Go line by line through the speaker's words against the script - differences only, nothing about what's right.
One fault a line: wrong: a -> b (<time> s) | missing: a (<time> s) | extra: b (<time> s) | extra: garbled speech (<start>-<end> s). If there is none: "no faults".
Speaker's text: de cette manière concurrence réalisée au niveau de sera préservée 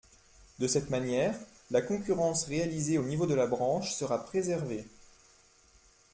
extra: la (1.7 s)
extra: la branche (3.3 s)